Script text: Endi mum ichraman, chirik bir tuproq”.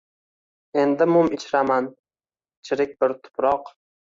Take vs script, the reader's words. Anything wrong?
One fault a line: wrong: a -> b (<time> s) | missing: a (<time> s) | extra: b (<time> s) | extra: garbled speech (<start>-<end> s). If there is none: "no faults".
no faults